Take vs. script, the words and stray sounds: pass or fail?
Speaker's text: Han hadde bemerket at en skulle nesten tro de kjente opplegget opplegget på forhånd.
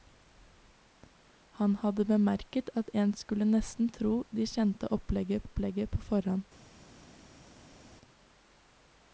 pass